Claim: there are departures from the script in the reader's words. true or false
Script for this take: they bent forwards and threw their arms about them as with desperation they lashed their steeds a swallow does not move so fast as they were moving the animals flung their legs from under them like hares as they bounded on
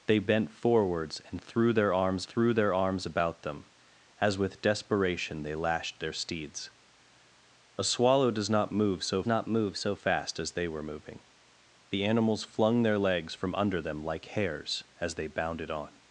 true